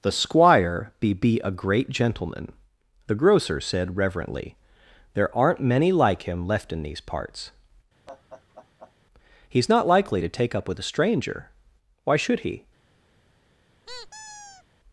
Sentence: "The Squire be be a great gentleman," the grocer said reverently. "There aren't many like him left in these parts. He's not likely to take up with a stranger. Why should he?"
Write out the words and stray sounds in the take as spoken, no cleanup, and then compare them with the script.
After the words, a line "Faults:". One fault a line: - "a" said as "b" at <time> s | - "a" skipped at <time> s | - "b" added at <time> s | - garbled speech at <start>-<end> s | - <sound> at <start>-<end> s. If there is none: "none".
"The Squire be be a great gentleman," the grocer said reverently. "There aren't many like him left in these parts. He's not likely to take up with a stranger. Why should he?"
Faults:
- laugh at 8.1-8.9 s
- squeak at 13.9-14.6 s